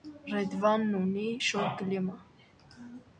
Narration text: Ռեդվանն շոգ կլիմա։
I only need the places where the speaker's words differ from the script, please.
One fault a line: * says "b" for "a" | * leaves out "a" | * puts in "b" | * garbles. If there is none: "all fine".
* puts in "ունի"